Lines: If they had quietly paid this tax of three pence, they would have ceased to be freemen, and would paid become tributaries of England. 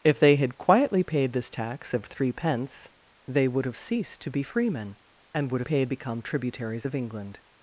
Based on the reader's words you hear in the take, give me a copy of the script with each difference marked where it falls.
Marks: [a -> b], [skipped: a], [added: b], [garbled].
If they had quietly paid this tax of three pence, they would have ceased to be freemen, and would paid become tributaries of England.